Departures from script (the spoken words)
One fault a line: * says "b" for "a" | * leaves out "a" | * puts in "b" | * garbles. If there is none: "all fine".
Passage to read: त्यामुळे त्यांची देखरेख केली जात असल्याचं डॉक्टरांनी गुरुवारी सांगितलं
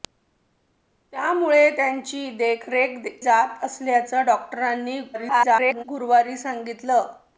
* leaves out "केली"
* garbles